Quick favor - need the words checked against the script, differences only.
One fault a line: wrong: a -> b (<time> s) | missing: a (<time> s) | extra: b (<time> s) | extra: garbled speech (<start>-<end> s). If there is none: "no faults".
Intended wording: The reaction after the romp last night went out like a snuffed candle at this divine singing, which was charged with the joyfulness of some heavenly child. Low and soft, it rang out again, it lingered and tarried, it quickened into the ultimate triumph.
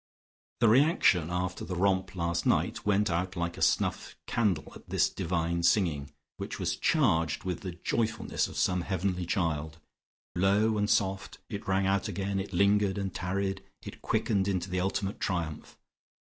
no faults